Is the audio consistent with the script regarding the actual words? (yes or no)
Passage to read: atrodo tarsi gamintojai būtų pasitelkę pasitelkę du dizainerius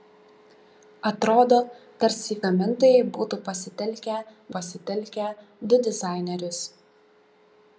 yes